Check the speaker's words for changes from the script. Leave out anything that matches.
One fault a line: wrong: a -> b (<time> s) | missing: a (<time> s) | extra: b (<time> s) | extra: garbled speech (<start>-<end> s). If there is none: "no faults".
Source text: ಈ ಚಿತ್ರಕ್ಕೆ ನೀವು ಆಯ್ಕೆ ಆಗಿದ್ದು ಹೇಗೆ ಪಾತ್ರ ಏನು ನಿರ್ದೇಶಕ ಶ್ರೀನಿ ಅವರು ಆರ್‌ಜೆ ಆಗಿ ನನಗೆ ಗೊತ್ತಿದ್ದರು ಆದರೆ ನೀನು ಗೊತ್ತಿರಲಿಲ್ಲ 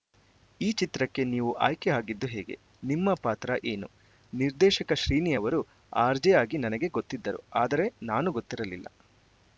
extra: ನಿಮ್ಮ (2.8 s)
wrong: ನೀನು -> ನಾನು (8.1 s)